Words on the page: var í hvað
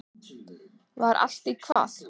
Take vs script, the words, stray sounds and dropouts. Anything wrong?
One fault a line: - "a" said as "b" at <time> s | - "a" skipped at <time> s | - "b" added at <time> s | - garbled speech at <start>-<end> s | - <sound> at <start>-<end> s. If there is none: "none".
- "allt" added at 1.3 s
- dropout at 1.7-1.8 s